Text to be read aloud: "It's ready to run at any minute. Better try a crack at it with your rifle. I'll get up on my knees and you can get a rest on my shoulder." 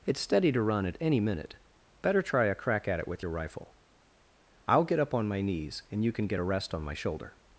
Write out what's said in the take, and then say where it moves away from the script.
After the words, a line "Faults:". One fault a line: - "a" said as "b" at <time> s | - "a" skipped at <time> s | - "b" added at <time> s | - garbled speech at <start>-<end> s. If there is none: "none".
"It's steady to run at any minute. Better try a crack at it with your rifle. I'll get up on my knees and you can get a rest on my shoulder."
Faults:
- "ready" said as "steady" at 0.2 s